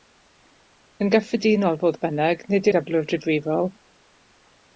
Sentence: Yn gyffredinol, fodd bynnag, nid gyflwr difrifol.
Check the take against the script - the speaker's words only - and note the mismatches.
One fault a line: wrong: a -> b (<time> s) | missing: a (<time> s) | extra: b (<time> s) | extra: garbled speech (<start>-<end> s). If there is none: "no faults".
no faults